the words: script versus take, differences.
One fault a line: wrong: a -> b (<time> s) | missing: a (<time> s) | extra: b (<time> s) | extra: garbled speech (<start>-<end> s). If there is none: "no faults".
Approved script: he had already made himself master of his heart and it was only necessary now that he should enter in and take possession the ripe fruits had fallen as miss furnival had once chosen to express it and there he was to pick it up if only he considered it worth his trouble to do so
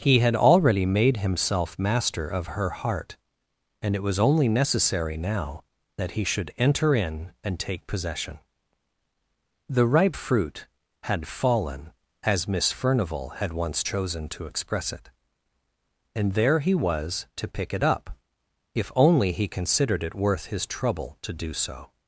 wrong: his -> her (2.6 s)
wrong: fruits -> fruit (10.1 s)